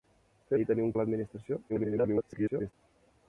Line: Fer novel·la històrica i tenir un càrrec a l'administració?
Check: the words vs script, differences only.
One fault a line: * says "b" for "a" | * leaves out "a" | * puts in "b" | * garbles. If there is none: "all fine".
* leaves out "novel·la històrica"
* leaves out "càrrec"
* garbles